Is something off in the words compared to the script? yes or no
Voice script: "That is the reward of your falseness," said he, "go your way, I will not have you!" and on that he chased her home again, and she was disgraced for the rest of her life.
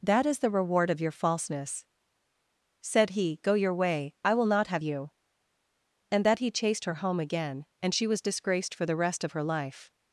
yes